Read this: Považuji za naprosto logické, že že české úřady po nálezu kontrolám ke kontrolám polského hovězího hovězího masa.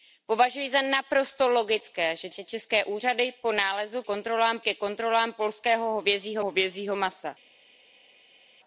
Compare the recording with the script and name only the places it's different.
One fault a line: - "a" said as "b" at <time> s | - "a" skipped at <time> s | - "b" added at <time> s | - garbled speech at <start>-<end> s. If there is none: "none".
none